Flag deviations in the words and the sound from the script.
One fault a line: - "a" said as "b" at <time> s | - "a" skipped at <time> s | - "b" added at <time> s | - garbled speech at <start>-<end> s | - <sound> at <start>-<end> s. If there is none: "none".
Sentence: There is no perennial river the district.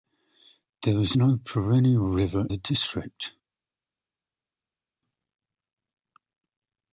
none